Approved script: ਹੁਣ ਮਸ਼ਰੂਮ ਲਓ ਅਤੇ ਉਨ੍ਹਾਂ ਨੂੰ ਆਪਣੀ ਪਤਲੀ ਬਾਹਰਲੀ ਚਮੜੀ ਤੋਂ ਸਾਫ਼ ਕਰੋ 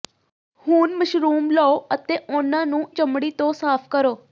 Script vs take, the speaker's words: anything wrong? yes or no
yes